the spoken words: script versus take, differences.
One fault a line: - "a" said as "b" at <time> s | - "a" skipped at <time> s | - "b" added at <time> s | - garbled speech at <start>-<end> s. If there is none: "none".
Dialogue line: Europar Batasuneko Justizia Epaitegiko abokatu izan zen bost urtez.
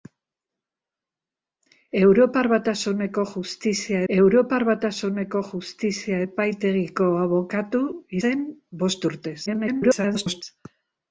- "europar Batasuneko Justizia" added at 4.1 s
- "izan" skipped at 7.8 s
- garbled speech at 9.5-10.4 s